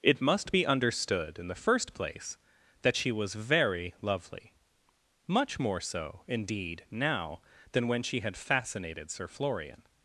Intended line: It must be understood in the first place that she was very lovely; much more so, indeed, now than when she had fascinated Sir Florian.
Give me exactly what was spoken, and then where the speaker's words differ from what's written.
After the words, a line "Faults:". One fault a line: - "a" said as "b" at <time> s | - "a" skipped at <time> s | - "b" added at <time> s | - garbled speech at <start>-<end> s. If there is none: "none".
It must be understood in the first place that she was very lovely; much more so, indeed, now than when she had fascinated Sir Florian.
Faults:
none